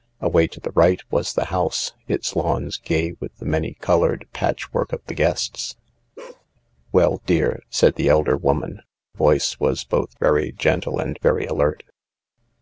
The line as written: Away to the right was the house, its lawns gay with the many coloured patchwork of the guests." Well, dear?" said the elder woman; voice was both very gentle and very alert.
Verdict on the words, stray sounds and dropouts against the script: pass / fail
fail